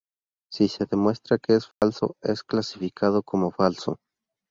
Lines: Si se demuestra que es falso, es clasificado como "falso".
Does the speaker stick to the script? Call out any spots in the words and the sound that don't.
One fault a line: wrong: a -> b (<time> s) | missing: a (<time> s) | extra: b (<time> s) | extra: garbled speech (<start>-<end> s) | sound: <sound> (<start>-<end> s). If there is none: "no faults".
sound: dropout (1.7-1.8 s)